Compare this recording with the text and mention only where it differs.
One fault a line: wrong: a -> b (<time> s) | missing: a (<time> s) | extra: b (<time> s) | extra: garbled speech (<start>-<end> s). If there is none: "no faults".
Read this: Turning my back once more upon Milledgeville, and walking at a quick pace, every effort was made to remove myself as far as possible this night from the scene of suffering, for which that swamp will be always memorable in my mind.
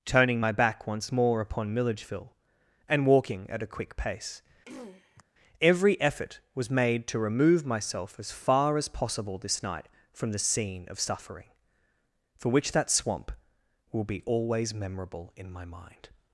no faults